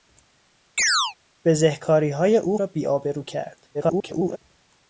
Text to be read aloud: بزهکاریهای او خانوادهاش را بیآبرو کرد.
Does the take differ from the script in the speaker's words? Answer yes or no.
yes